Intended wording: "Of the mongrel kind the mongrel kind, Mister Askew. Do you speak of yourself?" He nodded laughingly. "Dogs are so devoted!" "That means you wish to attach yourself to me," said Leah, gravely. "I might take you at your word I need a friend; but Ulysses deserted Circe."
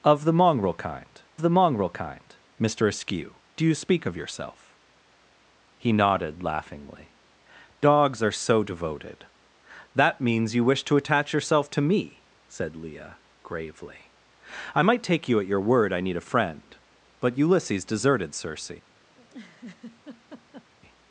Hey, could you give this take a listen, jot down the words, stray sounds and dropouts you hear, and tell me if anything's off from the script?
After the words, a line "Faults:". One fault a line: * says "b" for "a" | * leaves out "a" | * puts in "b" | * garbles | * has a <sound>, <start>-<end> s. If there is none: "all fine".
"Of the mongrel kind the mongrel kind, Mister Askew. Do you speak of yourself?" He nodded laughingly. "Dogs are so devoted!" "That means you wish to attach yourself to me," said Leah, gravely. "I might take you at your word I need a friend; but Ulysses deserted Circe."
Faults:
* has a laugh, 19.1-20.7 s